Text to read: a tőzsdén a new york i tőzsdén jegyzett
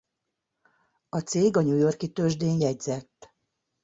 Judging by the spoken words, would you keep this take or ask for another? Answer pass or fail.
fail